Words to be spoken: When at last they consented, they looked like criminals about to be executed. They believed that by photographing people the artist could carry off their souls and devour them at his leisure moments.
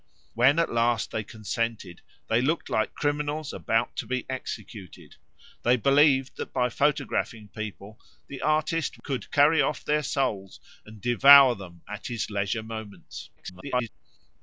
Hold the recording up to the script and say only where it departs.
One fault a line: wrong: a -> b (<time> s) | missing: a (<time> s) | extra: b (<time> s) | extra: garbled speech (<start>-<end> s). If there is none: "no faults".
extra: garbled speech (13.4-13.9 s)